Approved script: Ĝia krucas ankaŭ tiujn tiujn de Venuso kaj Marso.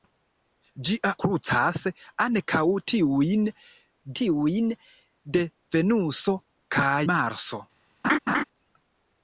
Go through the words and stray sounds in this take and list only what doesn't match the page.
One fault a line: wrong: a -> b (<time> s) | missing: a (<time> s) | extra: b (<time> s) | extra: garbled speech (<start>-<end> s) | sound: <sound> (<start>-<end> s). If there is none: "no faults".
sound: laugh (8.0-8.4 s)